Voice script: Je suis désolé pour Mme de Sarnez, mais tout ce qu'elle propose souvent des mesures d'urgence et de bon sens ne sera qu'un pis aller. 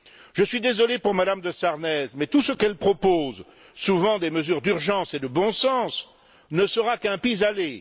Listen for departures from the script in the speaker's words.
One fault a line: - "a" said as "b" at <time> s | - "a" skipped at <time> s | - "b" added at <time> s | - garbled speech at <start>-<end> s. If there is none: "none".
none